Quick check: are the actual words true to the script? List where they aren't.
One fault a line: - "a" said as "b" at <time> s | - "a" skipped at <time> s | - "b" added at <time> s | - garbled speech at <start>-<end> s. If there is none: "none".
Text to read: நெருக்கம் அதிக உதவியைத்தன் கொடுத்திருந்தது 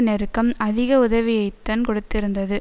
none